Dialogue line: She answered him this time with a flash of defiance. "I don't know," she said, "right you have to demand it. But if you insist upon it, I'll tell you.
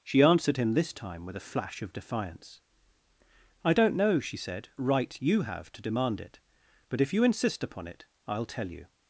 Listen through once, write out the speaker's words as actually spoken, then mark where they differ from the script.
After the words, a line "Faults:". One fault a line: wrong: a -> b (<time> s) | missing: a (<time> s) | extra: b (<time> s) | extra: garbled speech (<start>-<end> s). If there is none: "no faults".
She answered him this time with a flash of defiance. "I don't know," she said, "right you have to demand it. But if you insist upon it, I'll tell you.
Faults:
no faults